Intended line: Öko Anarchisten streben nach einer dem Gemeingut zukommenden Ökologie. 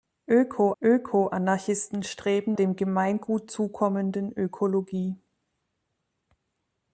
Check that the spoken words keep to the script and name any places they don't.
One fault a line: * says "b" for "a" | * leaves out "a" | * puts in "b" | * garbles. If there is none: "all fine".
* puts in "öko"
* leaves out "nach einer"